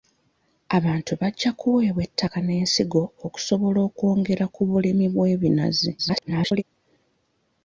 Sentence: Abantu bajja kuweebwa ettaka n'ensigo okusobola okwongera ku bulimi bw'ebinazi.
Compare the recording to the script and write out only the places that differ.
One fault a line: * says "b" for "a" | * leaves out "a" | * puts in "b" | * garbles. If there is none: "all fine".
* garbles